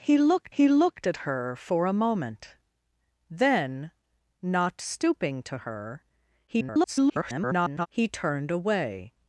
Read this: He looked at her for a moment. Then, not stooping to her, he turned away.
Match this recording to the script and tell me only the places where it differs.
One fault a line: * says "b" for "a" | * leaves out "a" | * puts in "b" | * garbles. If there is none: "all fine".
* puts in "he looked"
* garbles